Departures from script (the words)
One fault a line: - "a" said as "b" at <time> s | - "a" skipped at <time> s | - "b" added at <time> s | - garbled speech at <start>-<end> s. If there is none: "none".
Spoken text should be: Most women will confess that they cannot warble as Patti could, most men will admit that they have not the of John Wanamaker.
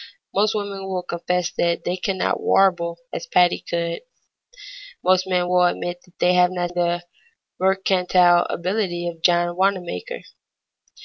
- "mercantile ability" added at 7.6 s